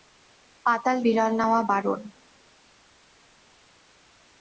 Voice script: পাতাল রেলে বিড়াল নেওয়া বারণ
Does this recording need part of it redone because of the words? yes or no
yes